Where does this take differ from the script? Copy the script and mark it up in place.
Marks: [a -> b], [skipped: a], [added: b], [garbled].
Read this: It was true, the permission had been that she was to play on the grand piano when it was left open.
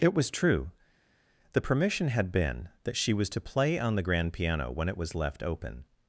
It was true, the permission had been that she was to play on the grand piano when it was left open.